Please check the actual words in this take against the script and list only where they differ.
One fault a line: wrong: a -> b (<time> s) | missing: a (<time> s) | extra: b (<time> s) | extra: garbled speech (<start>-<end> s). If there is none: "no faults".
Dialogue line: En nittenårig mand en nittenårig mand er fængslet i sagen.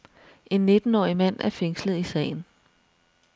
missing: en nittenårig mand (1.4 s)